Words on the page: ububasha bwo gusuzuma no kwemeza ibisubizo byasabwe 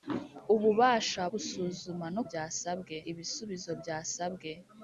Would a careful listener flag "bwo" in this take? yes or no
yes